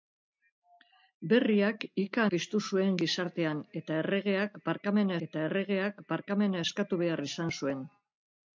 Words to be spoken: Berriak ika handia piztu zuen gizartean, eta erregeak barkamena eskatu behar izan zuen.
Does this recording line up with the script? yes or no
no